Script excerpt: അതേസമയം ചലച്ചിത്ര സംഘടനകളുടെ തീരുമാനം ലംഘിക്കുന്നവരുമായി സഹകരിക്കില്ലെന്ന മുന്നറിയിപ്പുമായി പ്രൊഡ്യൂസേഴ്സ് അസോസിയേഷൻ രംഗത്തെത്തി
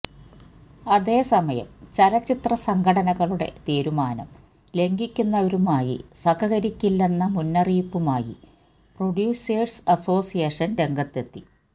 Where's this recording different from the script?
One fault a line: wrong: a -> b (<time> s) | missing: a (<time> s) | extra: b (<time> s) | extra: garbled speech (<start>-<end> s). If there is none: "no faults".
no faults